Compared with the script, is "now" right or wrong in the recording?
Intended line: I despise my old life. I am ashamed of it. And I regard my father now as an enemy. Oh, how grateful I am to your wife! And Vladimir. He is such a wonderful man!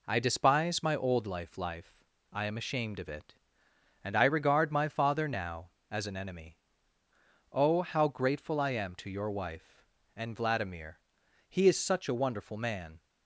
right